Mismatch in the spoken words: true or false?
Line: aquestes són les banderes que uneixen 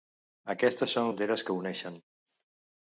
true